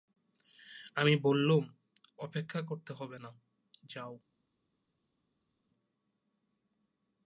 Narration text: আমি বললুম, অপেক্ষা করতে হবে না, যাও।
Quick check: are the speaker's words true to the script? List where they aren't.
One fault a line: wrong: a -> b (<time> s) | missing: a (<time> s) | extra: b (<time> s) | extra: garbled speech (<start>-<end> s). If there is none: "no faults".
no faults